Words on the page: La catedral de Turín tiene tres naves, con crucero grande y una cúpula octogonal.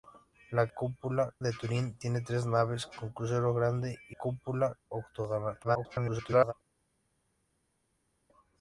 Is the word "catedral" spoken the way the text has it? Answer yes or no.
no